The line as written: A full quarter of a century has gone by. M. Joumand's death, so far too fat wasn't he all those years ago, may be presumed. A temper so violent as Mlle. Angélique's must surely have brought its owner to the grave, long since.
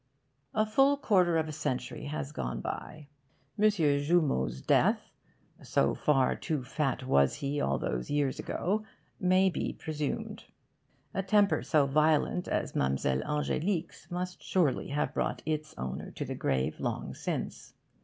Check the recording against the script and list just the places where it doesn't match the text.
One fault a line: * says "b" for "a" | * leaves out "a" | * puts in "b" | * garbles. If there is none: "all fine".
* says "was" for "wasn't"